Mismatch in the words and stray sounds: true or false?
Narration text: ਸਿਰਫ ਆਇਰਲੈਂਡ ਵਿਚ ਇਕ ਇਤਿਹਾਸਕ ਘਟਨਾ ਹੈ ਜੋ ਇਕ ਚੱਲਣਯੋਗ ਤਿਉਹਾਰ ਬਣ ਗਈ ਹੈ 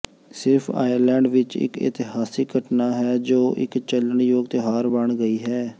false